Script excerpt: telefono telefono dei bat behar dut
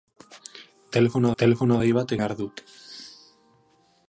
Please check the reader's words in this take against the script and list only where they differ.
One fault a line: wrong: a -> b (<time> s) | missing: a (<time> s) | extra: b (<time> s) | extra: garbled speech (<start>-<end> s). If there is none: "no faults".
no faults